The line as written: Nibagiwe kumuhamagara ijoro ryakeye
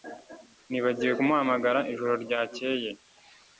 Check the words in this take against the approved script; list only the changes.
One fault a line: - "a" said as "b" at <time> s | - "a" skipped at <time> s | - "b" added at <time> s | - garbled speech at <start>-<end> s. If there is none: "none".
none